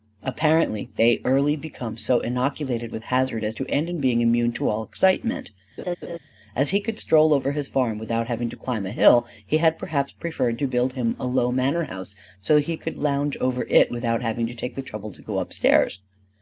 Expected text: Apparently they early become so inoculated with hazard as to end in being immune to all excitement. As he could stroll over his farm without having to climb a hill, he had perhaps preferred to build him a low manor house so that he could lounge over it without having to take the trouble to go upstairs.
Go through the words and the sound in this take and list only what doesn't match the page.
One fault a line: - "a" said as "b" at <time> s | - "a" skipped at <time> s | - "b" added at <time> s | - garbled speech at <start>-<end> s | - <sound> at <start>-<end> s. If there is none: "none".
- laugh at 5.8-6.2 s